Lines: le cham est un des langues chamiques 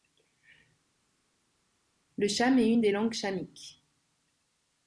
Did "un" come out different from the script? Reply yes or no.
yes